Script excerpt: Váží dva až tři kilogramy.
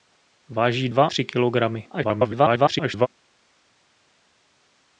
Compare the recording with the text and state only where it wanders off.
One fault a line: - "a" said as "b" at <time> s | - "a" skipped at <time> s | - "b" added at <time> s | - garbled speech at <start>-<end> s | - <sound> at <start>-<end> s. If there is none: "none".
- "až" skipped at 1.1 s
- garbled speech at 1.9-3.1 s